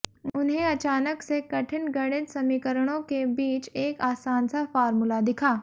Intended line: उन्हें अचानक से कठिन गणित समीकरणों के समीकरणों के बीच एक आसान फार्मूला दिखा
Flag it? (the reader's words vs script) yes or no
yes